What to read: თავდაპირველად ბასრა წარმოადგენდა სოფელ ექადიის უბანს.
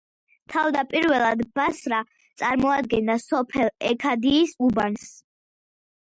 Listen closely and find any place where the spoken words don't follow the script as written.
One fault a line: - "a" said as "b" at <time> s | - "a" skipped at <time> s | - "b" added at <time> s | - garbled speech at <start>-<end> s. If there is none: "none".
none